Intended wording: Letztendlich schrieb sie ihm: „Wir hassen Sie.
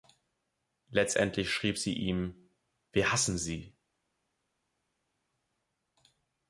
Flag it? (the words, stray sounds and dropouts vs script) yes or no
no